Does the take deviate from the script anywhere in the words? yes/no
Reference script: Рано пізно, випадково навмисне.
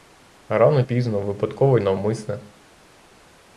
no